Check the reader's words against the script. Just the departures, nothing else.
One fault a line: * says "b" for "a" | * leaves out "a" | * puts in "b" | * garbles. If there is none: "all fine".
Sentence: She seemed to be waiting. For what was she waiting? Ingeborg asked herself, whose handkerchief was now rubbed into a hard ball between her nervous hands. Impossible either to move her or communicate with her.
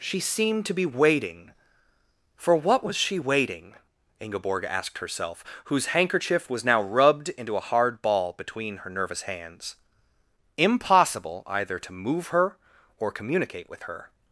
all fine